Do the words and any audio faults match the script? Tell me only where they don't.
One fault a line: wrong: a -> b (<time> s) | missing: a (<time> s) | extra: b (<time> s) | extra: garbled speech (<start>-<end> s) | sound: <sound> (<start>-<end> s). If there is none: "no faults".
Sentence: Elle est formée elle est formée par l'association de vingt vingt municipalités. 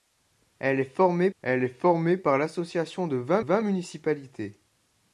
no faults